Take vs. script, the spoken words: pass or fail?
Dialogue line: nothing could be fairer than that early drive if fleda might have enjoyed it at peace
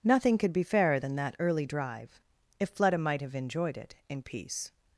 fail